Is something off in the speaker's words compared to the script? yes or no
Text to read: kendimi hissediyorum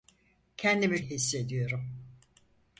no